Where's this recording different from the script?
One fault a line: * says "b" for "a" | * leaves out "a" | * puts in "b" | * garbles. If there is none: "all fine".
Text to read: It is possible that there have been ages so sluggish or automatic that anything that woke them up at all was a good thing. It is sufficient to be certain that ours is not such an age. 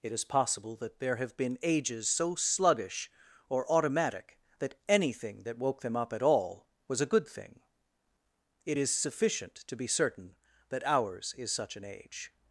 * leaves out "not"